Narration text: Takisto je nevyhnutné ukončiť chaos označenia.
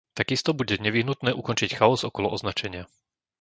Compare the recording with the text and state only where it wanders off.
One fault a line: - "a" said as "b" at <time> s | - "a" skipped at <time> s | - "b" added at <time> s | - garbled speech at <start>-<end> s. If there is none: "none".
- "je" said as "bude" at 0.6 s
- "okolo" added at 2.0 s